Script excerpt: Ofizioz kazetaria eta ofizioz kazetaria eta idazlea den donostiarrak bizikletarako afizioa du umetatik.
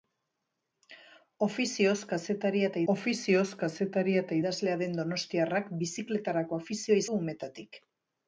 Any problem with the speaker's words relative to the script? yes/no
no